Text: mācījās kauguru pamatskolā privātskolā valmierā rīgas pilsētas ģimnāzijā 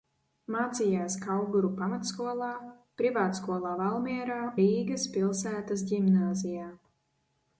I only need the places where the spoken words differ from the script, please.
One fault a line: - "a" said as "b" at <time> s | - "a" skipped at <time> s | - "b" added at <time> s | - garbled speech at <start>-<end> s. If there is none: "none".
none